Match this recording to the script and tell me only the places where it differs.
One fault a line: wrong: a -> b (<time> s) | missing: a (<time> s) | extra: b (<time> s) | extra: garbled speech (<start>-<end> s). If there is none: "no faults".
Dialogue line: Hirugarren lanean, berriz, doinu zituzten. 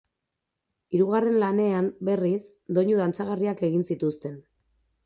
extra: dantzagarriak egin (3.0 s)